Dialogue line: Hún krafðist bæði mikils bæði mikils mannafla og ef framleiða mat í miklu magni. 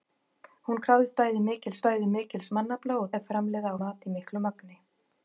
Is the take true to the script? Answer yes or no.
yes